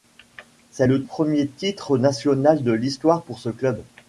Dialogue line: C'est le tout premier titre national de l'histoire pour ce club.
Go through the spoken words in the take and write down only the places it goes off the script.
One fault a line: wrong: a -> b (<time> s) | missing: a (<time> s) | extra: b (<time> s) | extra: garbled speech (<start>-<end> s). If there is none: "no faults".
missing: tout (1.0 s)